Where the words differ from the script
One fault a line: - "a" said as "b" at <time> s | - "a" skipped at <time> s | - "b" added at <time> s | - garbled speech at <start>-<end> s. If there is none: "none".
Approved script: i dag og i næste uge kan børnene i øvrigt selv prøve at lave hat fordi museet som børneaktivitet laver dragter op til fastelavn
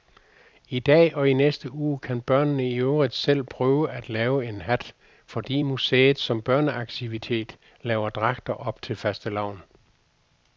- "en" added at 4.5 s